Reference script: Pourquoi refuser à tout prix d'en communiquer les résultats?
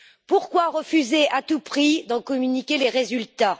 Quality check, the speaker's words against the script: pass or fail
pass